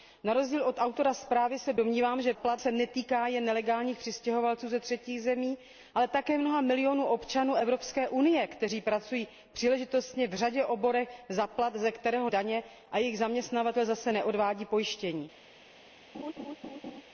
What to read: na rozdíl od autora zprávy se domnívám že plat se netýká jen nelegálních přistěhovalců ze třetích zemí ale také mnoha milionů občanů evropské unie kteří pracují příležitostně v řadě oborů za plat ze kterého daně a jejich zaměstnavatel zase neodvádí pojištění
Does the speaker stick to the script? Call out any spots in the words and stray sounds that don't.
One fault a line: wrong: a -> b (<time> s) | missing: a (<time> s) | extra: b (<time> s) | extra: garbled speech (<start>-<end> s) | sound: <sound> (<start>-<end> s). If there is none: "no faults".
sound: laugh (16.1-17.0 s)